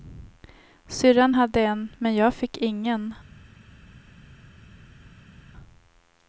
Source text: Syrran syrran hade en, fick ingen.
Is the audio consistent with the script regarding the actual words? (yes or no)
no